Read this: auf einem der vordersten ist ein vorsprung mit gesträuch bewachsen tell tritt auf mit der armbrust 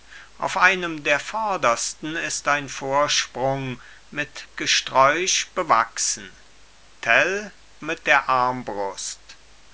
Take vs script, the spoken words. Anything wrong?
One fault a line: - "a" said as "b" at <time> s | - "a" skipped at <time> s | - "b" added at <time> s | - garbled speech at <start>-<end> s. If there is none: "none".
- "tritt auf" skipped at 7.5 s